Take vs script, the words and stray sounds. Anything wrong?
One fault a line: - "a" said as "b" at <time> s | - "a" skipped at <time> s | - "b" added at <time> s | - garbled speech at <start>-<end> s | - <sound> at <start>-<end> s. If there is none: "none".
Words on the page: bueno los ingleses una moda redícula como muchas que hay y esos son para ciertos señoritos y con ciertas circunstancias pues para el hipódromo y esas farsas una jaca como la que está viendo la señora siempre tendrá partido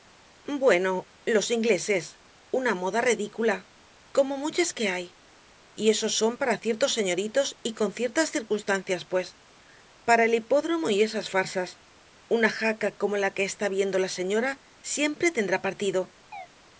- chirp at 16.3-16.5 s